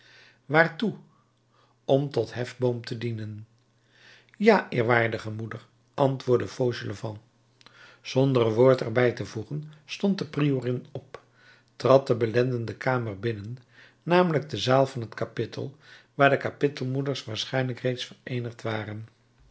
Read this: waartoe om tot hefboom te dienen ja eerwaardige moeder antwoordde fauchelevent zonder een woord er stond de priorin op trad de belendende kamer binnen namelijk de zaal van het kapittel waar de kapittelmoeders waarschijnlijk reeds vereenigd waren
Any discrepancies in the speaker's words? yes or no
yes